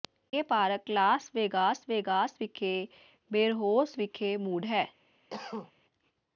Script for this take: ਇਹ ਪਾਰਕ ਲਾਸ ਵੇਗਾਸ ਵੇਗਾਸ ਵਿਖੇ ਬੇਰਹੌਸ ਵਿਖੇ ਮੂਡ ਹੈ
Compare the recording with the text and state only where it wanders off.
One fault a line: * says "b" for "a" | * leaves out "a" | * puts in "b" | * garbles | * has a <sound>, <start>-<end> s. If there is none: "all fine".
* has a cough, 5.3-5.7 s